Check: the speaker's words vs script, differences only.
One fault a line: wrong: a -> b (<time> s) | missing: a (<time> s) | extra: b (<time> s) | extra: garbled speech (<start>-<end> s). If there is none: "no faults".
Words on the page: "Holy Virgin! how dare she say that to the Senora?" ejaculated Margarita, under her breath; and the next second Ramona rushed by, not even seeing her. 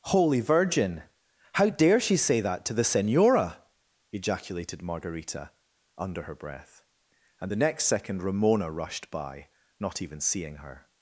no faults